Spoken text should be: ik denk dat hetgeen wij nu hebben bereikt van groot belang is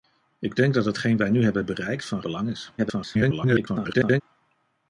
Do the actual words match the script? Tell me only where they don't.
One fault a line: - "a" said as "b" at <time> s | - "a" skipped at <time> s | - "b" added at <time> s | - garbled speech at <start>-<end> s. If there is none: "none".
- "groot" skipped at 2.2 s
- garbled speech at 2.8-4.2 s